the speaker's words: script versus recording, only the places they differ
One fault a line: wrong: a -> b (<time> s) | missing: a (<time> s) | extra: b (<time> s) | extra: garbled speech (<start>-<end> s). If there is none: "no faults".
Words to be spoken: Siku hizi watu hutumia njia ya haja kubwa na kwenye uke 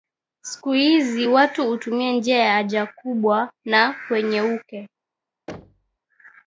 no faults